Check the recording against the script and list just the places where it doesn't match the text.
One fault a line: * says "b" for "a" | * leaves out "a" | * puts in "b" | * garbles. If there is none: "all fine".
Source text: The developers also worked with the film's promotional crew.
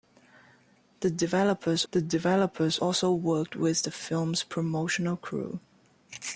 * puts in "the developers"